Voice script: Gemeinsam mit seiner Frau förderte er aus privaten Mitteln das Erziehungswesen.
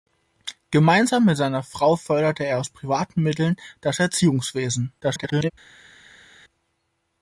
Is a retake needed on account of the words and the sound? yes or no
yes